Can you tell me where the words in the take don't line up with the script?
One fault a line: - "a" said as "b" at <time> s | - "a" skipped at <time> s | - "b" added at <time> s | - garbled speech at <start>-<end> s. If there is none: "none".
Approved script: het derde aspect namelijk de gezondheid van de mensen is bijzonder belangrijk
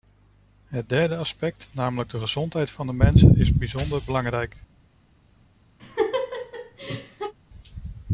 none